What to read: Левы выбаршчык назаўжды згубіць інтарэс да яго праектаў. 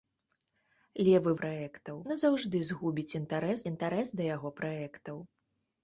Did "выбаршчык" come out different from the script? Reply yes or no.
yes